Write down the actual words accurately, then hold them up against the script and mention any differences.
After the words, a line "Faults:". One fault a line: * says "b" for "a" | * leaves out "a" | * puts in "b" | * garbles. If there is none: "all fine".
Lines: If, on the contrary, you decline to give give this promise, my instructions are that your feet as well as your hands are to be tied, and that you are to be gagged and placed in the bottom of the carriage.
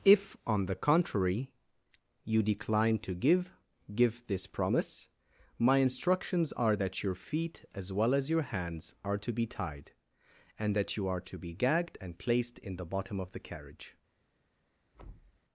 If, on the contrary, you decline to give give this promise, my instructions are that your feet as well as your hands are to be tied, and that you are to be gagged and placed in the bottom of the carriage.
Faults:
all fine